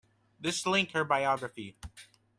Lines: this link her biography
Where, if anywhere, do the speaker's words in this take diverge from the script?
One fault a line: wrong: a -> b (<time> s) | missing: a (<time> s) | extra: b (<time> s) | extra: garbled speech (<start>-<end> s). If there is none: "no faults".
no faults